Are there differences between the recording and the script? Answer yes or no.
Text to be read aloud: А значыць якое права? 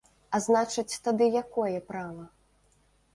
yes